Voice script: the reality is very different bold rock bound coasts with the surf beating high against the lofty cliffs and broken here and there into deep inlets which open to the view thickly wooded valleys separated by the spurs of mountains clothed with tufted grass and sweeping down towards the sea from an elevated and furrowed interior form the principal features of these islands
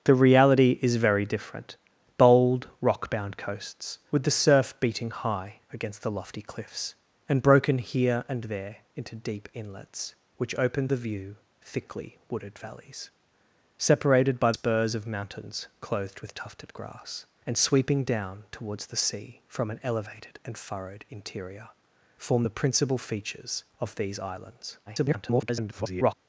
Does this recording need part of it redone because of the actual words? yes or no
yes